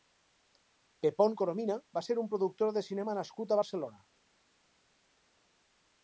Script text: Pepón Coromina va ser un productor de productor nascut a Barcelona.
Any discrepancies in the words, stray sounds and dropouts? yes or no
yes